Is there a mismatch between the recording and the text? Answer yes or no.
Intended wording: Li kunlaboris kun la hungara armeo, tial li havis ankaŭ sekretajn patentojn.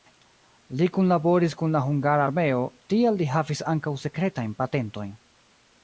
no